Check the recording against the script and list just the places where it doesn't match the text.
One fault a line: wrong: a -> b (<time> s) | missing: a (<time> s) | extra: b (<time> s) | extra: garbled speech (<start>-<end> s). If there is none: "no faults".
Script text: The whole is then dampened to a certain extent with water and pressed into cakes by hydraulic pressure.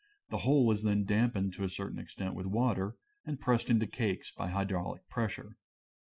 no faults